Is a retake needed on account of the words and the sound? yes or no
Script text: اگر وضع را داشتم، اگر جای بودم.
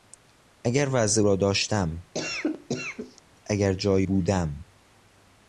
yes